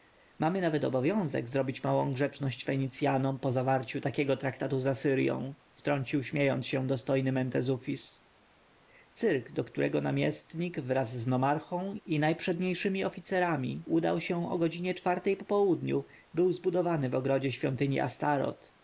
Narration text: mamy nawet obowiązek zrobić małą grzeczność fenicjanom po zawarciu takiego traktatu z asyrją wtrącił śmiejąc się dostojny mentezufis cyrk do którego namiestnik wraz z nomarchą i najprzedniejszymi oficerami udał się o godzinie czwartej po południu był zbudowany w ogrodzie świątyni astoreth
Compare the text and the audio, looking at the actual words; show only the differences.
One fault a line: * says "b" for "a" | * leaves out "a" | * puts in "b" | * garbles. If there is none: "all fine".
all fine